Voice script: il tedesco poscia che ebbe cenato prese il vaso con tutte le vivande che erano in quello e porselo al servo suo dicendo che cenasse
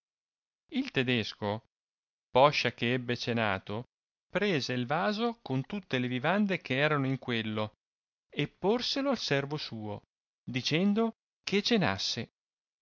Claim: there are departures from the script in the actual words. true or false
false